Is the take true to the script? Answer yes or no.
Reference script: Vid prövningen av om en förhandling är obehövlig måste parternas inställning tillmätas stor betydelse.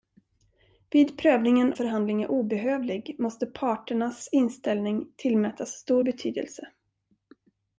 no